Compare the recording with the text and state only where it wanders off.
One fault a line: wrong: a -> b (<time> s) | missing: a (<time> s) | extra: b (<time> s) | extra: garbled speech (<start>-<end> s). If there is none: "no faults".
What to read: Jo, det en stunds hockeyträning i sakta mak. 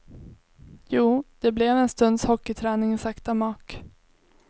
extra: blev (1.5 s)